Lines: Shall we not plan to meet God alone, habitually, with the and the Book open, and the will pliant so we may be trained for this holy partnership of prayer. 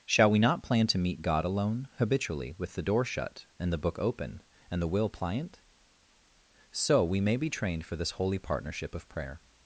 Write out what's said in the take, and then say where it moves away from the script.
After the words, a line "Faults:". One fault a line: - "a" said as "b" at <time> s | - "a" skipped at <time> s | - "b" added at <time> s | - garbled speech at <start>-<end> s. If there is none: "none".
Shall we not plan to meet God alone, habitually, with the door shut, and the Book open, and the will pliant so we may be trained for this holy partnership of prayer.
Faults:
- "door shut" added at 2.8 s